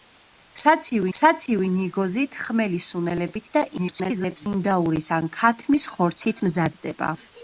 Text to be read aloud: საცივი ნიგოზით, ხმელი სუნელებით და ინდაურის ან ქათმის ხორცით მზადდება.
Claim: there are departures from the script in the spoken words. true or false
true